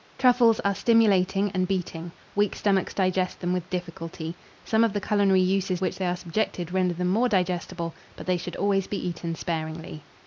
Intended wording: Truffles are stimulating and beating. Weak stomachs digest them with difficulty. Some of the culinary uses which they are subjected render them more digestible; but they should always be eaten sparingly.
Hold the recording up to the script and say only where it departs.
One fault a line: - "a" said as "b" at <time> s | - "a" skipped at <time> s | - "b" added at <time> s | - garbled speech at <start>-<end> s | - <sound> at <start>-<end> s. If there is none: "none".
none